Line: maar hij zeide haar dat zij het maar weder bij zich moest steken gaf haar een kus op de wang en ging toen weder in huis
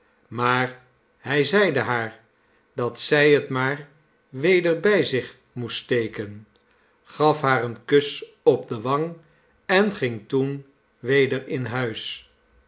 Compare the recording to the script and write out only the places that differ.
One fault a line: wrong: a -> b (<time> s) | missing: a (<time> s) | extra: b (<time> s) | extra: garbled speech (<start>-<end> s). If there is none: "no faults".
no faults